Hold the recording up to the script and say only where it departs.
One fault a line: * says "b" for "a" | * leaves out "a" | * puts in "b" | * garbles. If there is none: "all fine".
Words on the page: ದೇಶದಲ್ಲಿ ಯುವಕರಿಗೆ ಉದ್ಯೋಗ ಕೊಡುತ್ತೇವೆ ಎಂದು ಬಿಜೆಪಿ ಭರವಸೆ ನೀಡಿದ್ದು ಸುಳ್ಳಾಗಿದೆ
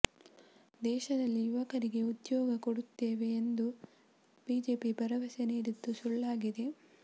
all fine